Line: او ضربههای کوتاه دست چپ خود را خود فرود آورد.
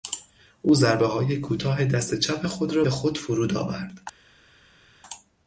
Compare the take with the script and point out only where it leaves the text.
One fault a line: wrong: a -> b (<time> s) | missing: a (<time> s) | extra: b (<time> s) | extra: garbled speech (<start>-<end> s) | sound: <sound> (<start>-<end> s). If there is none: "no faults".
no faults